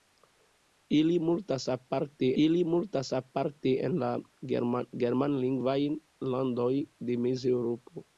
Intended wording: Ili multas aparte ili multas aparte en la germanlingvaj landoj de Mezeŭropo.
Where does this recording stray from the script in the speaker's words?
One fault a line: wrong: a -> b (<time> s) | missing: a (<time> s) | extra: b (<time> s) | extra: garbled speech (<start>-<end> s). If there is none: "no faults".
no faults